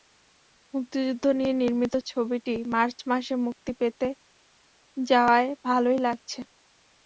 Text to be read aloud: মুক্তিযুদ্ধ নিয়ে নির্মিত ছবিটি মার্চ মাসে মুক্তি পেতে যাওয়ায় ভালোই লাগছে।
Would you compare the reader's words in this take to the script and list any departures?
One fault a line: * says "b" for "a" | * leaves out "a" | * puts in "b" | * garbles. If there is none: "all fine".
all fine